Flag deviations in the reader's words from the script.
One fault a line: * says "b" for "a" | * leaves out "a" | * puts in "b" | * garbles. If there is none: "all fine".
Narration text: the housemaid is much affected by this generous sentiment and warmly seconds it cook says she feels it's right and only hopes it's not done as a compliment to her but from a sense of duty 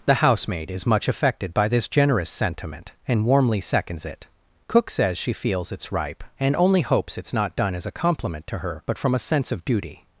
* says "ripe" for "right"